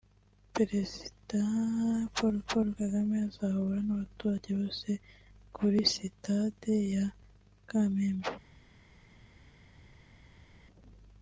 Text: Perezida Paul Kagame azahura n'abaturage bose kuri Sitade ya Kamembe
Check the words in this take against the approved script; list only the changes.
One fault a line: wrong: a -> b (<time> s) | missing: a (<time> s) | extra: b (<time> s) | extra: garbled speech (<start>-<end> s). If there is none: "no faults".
extra: Paul (2.5 s)